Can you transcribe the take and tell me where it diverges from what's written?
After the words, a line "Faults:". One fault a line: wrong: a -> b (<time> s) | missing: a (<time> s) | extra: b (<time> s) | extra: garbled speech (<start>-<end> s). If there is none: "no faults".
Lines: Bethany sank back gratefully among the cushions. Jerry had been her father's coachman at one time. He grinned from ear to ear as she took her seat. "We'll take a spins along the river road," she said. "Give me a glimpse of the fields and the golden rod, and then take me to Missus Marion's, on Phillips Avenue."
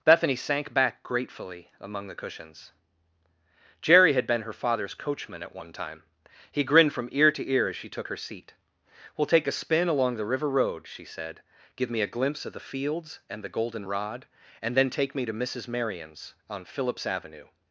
Bethany sank back gratefully among the cushions. Jerry had been her father's coachman at one time. He grinned from ear to ear as she took her seat. "We'll take a spin along the river road," she said. "Give me a glimpse of the fields and the golden rod, and then take me to Missus Marion's, on Phillips Avenue."
Faults:
wrong: spins -> spin (9.5 s)